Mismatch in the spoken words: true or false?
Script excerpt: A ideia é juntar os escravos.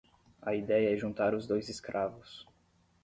true